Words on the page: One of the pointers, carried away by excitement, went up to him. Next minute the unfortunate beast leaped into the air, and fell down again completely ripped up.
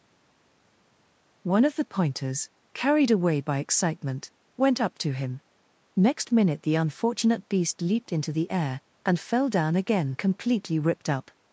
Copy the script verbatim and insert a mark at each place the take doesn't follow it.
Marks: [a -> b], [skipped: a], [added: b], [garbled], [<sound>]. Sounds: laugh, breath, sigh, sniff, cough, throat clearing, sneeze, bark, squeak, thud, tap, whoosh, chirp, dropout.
One of the pointers, carried away by excitement, went up to him. Next minute the unfortunate beast leaped into the air, and fell down again completely ripped up.